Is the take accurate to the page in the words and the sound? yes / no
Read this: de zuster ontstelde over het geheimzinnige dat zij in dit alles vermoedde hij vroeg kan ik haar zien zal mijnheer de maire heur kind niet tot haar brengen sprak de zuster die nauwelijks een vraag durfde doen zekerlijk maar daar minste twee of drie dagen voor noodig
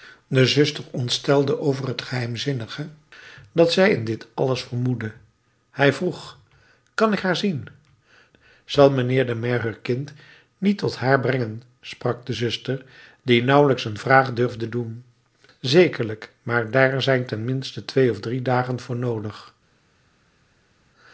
no